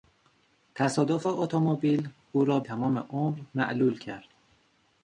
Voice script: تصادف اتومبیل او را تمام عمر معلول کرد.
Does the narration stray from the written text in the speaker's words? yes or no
no